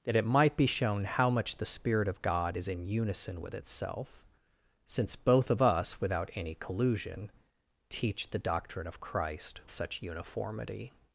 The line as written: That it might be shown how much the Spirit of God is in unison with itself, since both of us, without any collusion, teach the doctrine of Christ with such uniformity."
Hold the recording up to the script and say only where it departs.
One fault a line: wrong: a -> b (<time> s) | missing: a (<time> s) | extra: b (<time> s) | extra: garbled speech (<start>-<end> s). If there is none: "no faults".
missing: with (9.6 s)